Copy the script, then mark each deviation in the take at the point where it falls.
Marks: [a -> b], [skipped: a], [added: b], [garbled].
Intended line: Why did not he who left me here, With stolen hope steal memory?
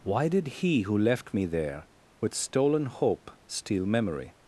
Why did [skipped: not] he who left me [here, -> there] With stolen hope steal memory?